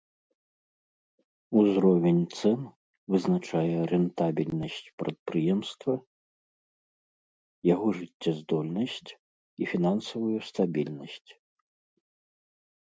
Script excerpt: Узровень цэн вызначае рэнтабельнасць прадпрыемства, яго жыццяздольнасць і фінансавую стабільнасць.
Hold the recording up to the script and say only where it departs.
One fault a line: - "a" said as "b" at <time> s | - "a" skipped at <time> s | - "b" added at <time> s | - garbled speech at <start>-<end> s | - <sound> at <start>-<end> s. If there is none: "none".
none